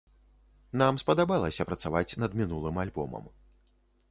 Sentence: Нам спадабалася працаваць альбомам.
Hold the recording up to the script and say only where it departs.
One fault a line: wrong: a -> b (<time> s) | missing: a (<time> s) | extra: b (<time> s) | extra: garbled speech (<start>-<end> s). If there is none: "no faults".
extra: над мінулым (2.2 s)